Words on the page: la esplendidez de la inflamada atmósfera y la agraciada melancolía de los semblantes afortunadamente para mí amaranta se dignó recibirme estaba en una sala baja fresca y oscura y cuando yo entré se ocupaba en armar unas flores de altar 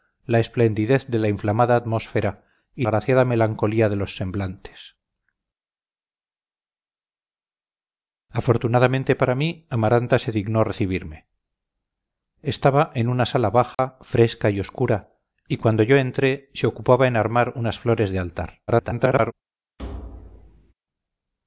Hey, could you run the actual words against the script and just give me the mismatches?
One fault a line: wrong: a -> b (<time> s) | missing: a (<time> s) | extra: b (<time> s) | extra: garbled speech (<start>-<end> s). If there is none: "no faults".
missing: la (2.9 s)
extra: garbled speech (18.7-19.3 s)